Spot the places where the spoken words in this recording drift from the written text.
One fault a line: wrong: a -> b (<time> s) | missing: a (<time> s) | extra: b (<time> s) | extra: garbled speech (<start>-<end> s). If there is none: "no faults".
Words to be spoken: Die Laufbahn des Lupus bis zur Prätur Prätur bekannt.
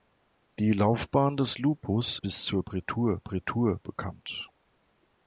no faults